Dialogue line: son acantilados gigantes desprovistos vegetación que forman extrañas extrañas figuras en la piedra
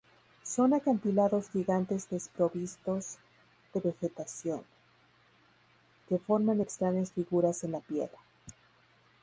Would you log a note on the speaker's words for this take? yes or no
yes